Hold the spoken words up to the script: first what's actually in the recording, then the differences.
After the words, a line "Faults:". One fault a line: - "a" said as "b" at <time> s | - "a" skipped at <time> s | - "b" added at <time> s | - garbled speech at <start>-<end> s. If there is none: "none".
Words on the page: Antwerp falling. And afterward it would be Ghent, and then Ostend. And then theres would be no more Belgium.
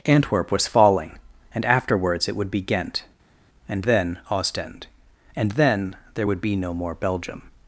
Antwerp was falling. And afterwards it would be Ghent, and then Ostend. And then there would be no more Belgium.
Faults:
- "was" added at 0.5 s
- "afterward" said as "afterwards" at 1.6 s
- "theres" said as "there" at 6.1 s